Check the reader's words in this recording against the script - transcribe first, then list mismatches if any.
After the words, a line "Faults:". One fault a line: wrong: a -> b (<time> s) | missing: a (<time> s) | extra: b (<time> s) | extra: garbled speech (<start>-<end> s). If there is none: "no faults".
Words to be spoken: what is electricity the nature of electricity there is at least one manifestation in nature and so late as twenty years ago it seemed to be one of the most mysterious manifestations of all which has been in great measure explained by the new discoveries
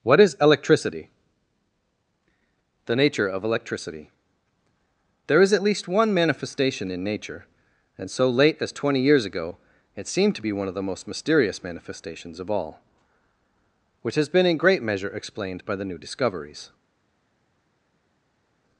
what is electricity the nature of electricity there is at least one manifestation in nature and so late as twenty years ago it seemed to be one of the most mysterious manifestations of all which has been in great measure explained by the new discoveries
Faults:
no faults